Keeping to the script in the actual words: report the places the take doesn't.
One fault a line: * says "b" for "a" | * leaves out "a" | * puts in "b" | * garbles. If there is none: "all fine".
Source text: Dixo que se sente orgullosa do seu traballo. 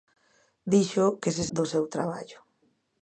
* leaves out "sente orgullosa"